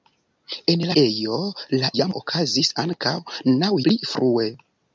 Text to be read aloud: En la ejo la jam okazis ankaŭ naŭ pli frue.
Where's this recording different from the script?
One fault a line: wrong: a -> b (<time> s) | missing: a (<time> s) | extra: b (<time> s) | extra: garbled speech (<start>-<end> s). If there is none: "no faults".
no faults